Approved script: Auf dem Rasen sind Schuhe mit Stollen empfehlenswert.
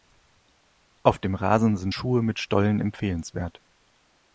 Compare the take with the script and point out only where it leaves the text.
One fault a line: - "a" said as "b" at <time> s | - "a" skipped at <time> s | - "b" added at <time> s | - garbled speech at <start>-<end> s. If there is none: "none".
none